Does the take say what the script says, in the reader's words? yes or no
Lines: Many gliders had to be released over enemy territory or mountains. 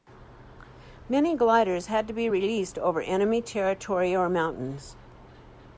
yes